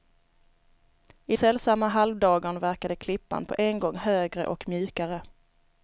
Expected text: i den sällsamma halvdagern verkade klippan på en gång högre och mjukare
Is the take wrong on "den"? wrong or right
wrong